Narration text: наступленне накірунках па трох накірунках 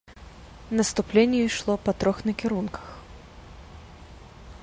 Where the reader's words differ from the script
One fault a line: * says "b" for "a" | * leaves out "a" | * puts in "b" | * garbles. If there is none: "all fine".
* says "ішло" for "накірунках"